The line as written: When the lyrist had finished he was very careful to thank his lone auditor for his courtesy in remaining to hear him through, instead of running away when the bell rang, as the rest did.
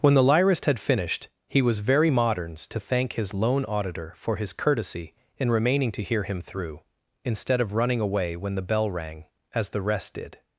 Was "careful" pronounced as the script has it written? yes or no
no